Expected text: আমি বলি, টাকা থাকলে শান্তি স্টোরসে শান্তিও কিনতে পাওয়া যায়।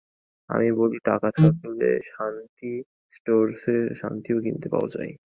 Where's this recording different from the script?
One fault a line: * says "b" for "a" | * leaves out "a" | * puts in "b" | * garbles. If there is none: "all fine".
all fine